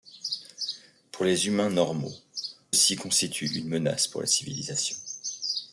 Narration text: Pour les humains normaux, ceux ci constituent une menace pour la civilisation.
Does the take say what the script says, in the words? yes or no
no